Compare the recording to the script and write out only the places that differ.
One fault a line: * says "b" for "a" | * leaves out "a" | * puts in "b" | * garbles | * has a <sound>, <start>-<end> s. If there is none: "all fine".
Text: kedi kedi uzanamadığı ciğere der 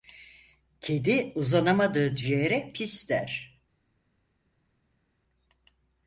* leaves out "kedi"
* puts in "pis"